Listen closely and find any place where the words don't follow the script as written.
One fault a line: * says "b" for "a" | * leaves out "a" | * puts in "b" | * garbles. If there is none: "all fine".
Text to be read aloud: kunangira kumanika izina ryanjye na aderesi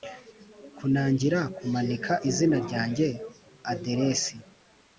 * leaves out "na"